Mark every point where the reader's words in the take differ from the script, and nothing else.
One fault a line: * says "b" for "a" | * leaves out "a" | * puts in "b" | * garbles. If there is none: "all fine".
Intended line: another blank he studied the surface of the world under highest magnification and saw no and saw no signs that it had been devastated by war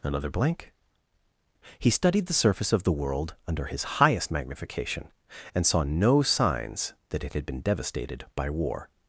* puts in "his"
* leaves out "and saw no"